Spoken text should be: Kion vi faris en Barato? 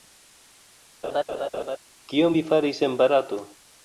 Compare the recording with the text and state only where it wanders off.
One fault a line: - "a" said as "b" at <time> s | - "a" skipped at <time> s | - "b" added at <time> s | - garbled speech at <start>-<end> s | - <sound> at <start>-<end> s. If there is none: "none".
- laugh at 1.0-1.8 s